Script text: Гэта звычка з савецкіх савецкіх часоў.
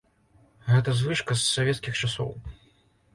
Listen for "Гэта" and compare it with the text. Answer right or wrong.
right